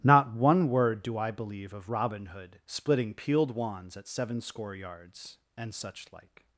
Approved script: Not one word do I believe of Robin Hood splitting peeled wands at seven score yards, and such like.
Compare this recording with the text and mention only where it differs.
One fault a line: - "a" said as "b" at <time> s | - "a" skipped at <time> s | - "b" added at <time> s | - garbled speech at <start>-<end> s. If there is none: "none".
none